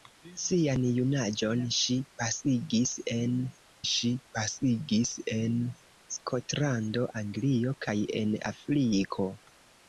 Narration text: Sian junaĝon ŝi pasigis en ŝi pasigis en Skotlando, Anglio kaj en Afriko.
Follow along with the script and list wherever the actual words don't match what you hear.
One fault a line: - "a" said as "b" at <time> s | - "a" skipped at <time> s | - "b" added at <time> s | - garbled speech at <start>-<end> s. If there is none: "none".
none